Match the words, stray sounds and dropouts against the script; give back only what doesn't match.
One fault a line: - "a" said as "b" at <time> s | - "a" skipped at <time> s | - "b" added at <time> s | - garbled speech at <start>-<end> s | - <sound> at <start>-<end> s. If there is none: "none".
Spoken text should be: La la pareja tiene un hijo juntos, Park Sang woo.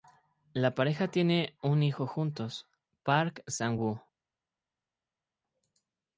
- "la" skipped at 0.7 s